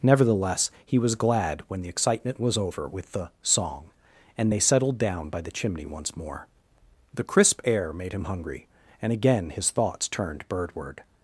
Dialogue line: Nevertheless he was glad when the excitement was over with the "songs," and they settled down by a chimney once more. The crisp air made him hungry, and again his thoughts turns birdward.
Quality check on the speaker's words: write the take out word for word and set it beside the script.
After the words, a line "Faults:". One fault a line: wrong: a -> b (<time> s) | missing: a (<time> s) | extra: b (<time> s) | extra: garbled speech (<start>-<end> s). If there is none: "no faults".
Nevertheless he was glad when the excitement was over with the "song," and they settled down by the chimney once more. The crisp air made him hungry, and again his thoughts turned birdward.
Faults:
wrong: songs -> song (3.4 s)
wrong: a -> the (5.4 s)
wrong: turns -> turned (10.1 s)